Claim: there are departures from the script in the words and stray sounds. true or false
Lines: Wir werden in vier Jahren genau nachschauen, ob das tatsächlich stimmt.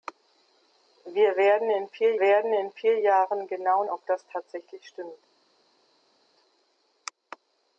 true